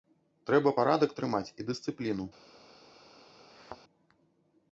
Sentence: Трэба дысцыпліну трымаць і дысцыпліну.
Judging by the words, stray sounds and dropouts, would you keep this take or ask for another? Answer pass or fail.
fail